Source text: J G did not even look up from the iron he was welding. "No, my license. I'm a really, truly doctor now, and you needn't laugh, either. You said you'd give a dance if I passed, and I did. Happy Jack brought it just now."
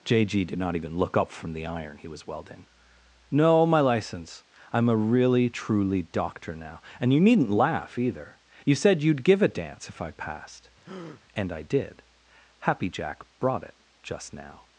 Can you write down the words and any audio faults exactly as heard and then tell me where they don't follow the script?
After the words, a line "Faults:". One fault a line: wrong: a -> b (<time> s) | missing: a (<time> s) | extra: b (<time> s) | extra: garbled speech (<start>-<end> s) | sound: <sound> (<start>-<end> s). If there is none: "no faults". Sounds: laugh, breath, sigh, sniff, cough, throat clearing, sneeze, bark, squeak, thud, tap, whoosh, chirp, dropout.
J G did not even look up from the iron he was welding. "No, my license. I'm a really, truly doctor now, and you needn't laugh, either. You said you'd give a dance if I passed, and I did. Happy Jack brought it just now."
Faults:
sound: breath (10.8-11.2 s)